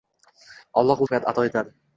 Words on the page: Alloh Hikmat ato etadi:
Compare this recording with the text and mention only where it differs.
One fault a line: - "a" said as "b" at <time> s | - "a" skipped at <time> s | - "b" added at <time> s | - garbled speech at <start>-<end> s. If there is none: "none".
none